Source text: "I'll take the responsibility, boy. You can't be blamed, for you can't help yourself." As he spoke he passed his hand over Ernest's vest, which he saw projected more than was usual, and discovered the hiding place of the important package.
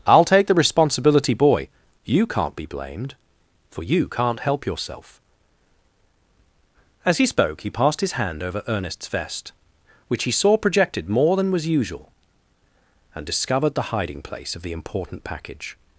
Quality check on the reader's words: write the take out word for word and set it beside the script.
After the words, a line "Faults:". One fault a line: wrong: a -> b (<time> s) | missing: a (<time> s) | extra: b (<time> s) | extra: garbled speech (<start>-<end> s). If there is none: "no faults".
"I'll take the responsibility, boy. You can't be blamed, for you can't help yourself." As he spoke he passed his hand over Ernest's vest, which he saw projected more than was usual, and discovered the hiding place of the important package.
Faults:
no faults